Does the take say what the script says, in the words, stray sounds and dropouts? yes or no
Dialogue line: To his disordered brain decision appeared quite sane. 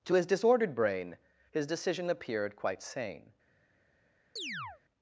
no